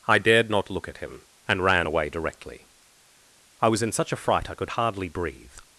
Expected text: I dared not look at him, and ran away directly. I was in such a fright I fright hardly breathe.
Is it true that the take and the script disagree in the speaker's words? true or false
true